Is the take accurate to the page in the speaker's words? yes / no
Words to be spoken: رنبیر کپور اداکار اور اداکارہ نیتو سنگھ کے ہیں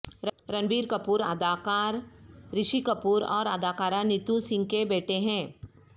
no